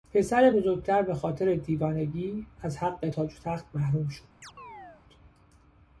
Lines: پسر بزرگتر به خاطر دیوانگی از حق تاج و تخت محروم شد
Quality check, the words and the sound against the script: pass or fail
fail